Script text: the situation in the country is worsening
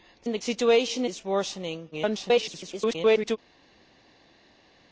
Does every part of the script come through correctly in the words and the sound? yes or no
no